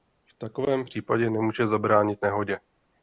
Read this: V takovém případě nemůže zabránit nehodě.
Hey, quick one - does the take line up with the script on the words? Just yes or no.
yes